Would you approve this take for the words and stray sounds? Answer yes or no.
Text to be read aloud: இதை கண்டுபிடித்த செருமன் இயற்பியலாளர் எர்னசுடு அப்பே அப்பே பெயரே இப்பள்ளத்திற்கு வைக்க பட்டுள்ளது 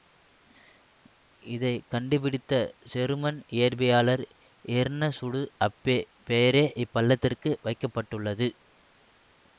no